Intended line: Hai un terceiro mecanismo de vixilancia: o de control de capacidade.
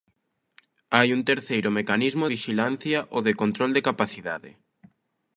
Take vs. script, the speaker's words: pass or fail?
fail